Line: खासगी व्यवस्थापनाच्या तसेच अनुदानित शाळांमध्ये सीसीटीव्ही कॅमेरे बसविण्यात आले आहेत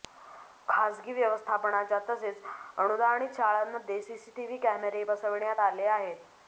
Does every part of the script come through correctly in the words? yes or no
yes